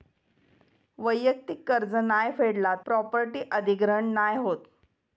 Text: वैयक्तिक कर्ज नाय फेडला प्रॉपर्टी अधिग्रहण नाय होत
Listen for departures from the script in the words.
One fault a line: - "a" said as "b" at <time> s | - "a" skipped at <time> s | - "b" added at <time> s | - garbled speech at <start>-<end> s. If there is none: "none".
none